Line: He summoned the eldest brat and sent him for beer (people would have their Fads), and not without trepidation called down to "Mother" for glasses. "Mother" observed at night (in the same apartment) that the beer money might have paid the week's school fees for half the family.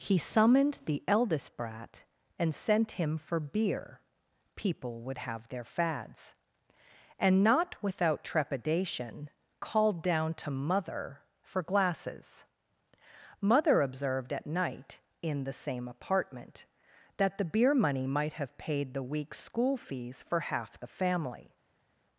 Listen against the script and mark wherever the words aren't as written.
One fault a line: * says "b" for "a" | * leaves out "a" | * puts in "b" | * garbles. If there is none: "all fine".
all fine